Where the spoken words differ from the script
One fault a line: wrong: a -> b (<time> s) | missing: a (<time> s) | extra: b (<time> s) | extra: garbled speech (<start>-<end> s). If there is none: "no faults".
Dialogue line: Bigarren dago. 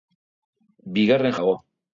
no faults